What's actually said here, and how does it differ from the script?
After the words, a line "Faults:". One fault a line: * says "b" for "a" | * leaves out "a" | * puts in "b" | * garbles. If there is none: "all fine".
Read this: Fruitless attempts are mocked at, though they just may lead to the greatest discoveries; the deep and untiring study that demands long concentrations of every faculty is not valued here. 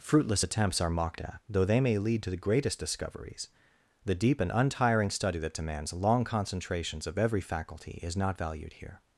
Fruitless attempts are mocked at, though they may lead to the greatest discoveries; the deep and untiring study that demands long concentrations of every faculty is not valued here.
Faults:
* leaves out "just"